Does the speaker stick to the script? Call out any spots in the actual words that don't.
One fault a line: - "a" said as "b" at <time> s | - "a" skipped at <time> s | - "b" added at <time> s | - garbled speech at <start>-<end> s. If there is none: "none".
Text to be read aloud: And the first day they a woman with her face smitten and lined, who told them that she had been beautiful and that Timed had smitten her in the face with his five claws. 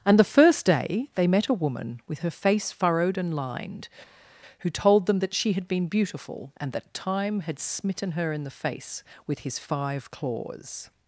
- "met" added at 1.3 s
- "smitten" said as "furrowed" at 2.7 s
- "Timed" said as "Time" at 6.9 s